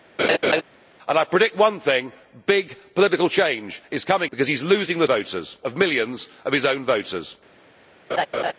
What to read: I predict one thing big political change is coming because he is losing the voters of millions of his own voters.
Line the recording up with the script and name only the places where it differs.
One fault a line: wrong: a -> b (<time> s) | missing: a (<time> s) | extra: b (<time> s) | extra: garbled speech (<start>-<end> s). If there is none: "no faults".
no faults